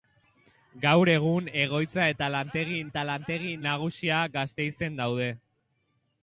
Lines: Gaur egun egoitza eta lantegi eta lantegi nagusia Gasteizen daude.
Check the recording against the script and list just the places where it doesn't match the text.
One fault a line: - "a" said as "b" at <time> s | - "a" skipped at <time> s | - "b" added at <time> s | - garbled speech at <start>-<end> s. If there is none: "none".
none